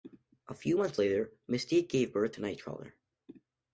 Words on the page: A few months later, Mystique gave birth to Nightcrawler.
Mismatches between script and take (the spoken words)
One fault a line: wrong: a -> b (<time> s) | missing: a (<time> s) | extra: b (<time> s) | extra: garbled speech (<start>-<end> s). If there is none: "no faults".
no faults